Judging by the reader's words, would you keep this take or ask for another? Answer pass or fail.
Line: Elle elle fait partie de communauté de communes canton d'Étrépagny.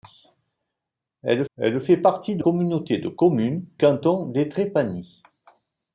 pass